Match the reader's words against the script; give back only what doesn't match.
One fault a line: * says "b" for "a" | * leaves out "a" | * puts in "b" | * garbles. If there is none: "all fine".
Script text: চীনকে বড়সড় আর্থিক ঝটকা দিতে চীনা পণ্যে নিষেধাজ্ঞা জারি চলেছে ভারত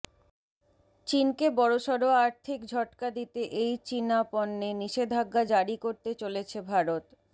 * puts in "এই"
* puts in "করতে"